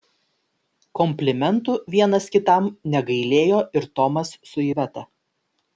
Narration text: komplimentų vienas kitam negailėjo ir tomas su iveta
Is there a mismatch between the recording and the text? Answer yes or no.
no